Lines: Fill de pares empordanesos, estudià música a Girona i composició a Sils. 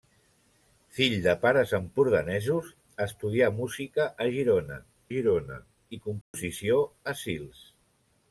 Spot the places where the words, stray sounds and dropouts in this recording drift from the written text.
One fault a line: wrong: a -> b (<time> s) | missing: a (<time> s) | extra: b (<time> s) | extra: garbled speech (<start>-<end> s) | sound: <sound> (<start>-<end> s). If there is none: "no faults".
extra: Girona (5.1 s)
sound: dropout (6.2-6.3 s)